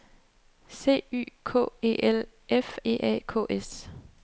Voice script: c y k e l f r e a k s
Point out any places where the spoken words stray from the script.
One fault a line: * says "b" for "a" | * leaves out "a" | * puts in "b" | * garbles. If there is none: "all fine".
* leaves out "r"